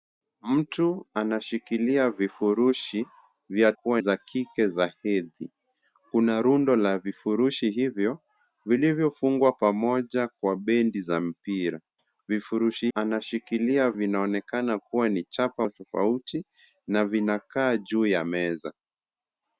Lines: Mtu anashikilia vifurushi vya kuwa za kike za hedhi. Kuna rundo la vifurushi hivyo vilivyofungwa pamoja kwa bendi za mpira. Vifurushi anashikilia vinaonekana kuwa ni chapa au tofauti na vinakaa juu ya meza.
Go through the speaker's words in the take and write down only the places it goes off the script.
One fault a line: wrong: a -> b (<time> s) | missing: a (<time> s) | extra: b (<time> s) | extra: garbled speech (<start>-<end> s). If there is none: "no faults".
no faults